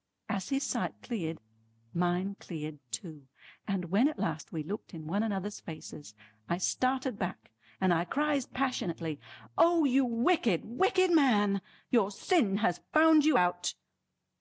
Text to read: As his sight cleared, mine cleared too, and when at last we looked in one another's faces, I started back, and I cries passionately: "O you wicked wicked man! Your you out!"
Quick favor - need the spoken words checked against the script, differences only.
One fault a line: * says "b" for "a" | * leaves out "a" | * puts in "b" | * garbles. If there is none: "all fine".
* puts in "sin has found"